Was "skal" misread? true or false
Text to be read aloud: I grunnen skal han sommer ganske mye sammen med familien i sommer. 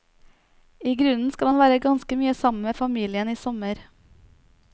false